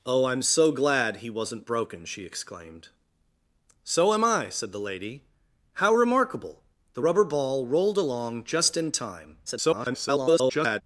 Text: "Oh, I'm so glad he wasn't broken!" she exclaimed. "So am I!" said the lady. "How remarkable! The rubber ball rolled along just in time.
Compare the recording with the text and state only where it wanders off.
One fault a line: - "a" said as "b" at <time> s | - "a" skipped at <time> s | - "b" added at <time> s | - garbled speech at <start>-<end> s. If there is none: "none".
- garbled speech at 9.5-10.8 s